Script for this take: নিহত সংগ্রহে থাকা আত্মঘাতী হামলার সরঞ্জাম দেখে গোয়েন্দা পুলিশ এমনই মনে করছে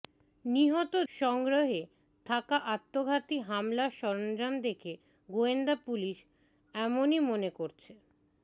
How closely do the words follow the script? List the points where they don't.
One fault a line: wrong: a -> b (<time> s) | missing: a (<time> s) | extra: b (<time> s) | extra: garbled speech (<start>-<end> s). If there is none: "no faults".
no faults